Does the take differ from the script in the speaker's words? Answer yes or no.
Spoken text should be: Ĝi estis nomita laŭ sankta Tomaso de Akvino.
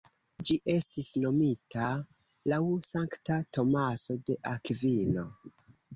no